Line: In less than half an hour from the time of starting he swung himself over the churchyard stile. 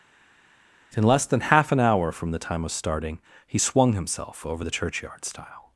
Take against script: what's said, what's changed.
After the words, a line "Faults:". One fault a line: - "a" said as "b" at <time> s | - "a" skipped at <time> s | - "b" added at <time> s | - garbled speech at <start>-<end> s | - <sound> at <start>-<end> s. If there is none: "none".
In less than half an hour from the time of starting he swung himself over the churchyard stile.
Faults:
none